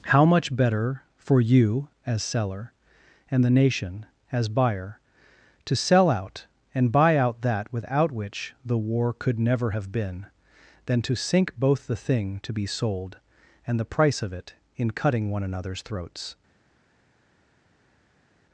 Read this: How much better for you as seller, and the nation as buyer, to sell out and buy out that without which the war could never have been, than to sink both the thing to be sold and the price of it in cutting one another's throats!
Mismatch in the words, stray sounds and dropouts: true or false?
false